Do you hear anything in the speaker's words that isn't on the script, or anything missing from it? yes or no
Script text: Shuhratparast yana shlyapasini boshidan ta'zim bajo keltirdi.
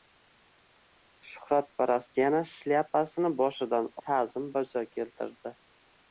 no